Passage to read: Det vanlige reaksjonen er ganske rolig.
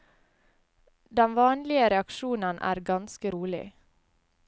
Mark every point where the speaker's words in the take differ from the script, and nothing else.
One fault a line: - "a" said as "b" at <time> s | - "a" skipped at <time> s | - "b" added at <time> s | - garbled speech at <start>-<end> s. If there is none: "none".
- "Det" said as "Den" at 1.2 s